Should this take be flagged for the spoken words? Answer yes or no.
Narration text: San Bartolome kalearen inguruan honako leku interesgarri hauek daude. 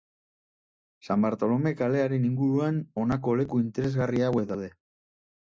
no